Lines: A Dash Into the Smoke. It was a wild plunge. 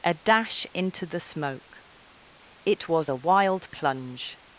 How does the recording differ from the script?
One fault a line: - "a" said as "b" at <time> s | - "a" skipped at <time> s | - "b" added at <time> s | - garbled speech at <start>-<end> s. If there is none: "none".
none